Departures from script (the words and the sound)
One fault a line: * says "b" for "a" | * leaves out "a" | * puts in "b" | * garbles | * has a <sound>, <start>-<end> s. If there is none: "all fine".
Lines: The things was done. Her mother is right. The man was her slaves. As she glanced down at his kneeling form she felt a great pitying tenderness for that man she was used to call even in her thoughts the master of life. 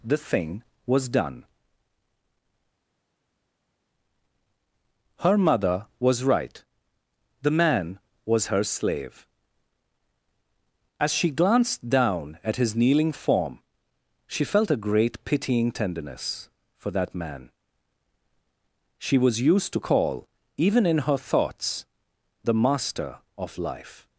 * says "thing" for "things"
* says "was" for "is"
* says "slave" for "slaves"